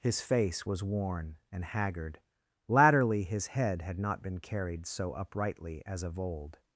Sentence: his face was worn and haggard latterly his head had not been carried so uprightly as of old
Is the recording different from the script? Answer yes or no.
no